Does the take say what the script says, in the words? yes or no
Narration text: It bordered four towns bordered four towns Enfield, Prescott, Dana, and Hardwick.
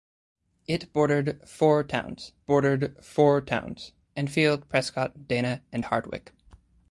yes